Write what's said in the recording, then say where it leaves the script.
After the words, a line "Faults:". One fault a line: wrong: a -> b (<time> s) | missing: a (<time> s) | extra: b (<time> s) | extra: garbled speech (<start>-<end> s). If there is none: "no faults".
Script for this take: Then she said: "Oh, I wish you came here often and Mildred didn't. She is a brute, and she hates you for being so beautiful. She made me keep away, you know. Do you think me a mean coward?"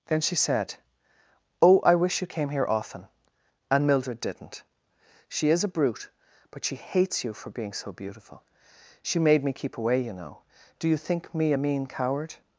Then she said: "Oh, I wish you came here often and Mildred didn't. She is a brute, but she hates you for being so beautiful. She made me keep away, you know. Do you think me a mean coward?"
Faults:
wrong: and -> but (6.5 s)